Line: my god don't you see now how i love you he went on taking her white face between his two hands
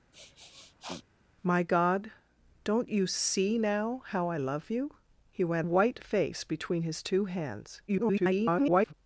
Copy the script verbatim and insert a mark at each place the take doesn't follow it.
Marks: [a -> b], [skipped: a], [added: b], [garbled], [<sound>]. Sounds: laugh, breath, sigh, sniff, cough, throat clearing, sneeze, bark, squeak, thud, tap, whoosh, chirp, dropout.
[sniff] my god don't you see now how i love you he went [skipped: on taking her] white face between his two hands [garbled]